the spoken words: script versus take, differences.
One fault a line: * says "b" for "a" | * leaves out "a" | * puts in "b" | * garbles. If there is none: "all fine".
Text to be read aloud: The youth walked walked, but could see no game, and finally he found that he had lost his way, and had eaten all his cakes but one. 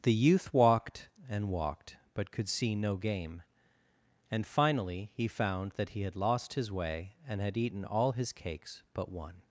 * puts in "and"